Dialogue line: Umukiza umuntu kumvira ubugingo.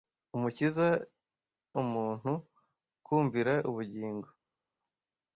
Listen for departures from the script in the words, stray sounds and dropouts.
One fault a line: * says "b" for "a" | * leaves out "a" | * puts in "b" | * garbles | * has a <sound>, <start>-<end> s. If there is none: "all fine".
all fine